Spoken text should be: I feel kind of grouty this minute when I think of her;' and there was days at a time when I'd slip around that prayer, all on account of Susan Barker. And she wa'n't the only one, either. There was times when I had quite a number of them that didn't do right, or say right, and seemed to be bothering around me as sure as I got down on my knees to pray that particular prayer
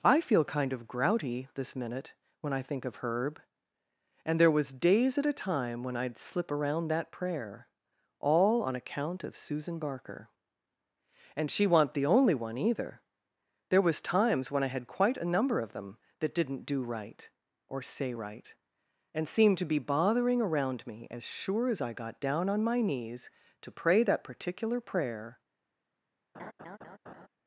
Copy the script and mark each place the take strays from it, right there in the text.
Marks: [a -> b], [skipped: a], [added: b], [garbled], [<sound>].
I feel kind of grouty this minute when I think of [her;' -> herb] and there was days at a time when I'd slip around that prayer, all on account of Susan Barker. And she wa'n't the only one, either. There was times when I had quite a number of them that didn't do right, or say right, and seemed to be bothering around me as sure as I got down on my knees to pray that particular prayer [laugh]